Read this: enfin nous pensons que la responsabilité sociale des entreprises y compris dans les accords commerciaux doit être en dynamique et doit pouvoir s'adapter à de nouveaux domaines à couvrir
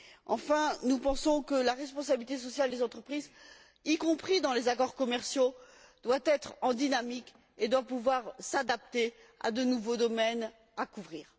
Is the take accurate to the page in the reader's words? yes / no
yes